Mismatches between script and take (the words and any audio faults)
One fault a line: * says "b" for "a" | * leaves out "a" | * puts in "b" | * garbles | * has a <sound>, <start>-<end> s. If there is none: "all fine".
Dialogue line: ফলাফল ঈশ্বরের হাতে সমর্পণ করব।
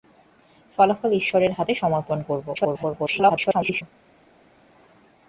* garbles